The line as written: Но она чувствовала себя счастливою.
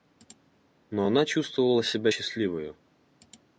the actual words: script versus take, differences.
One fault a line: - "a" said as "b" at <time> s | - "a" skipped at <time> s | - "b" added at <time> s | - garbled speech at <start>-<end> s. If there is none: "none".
none